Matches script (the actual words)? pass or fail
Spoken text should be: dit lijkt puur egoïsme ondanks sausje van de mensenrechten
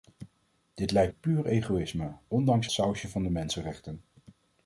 pass